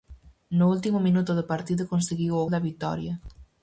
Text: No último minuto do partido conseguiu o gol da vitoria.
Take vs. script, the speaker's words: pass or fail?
fail